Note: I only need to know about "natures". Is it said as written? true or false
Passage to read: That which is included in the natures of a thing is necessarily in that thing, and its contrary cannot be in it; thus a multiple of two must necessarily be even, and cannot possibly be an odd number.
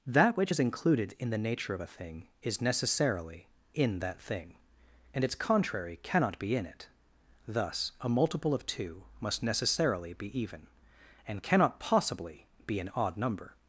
false